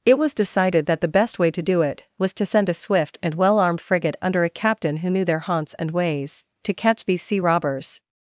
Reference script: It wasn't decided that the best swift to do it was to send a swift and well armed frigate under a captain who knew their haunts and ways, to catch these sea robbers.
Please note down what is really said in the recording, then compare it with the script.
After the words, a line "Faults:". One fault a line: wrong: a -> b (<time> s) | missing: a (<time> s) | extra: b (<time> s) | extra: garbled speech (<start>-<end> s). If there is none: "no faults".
It was decided that the best way to do it was to send a swift and well armed frigate under a captain who knew their haunts and ways, to catch these sea robbers.
Faults:
wrong: wasn't -> was (0.2 s)
wrong: swift -> way (1.4 s)